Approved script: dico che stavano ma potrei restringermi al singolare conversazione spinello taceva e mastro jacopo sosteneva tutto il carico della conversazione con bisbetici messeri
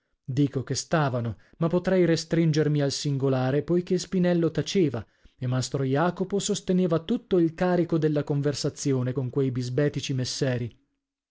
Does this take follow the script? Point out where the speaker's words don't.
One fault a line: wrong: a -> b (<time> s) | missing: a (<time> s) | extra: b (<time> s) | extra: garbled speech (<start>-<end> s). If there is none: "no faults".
wrong: conversazione -> poichè (3.6 s)
extra: quei (9.3 s)